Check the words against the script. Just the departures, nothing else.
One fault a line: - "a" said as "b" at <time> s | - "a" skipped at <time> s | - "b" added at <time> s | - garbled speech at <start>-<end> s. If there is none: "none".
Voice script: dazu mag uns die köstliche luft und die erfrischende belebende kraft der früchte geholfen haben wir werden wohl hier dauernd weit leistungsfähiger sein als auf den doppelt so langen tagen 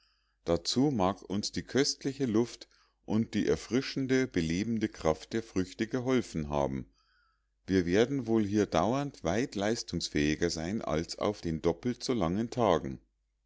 none